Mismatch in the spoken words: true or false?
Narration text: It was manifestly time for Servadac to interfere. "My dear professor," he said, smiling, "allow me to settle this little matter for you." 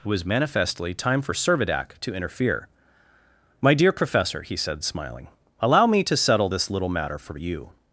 false